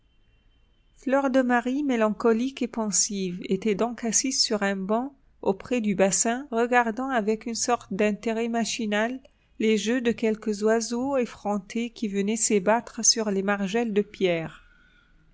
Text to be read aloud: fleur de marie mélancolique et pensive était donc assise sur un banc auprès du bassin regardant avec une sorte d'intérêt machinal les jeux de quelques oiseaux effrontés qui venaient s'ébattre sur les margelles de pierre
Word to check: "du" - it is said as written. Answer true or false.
true